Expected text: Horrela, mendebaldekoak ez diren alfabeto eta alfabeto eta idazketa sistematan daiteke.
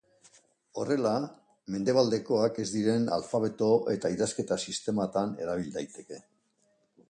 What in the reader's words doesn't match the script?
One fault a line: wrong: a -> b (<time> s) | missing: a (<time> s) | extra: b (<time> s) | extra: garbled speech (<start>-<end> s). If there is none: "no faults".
missing: alfabeto eta (4.1 s)
extra: erabil (5.5 s)